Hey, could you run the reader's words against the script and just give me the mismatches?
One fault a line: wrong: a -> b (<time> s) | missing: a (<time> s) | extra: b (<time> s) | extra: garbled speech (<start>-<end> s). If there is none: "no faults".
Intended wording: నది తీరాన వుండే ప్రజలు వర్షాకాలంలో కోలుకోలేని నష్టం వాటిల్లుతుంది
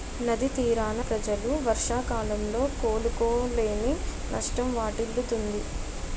missing: వుండే (1.0 s)